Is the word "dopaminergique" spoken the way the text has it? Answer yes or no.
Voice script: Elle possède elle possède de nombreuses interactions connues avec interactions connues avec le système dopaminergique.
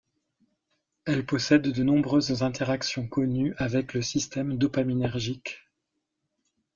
yes